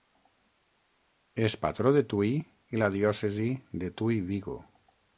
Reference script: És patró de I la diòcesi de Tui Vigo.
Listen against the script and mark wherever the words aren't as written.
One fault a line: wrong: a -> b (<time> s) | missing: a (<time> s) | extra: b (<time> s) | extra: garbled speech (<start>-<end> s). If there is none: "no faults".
extra: Tui (2.1 s)